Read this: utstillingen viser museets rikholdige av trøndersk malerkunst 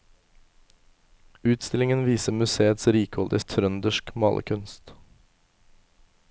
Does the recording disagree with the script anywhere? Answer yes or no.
no